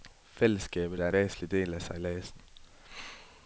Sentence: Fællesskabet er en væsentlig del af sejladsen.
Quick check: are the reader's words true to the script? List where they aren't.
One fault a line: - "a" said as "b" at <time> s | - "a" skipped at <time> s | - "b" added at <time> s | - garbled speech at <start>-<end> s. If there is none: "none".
- "en" skipped at 1.1 s